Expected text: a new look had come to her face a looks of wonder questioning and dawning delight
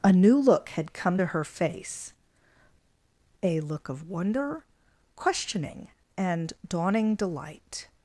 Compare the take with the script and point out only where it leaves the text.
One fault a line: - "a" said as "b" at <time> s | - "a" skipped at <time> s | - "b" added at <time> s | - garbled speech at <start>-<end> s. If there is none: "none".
- "looks" said as "look" at 3.6 s